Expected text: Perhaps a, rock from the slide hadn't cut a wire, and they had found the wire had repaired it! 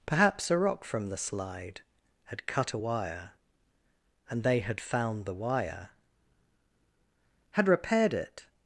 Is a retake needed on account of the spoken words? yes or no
yes